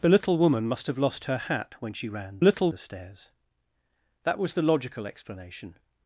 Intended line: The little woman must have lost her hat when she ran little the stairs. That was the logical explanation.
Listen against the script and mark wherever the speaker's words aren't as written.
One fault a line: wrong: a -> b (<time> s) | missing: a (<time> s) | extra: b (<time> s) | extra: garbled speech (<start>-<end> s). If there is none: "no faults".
no faults